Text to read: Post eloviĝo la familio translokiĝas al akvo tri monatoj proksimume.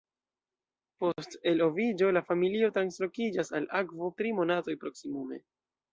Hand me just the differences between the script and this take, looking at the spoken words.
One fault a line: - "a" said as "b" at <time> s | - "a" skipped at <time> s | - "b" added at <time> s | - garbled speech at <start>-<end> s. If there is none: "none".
none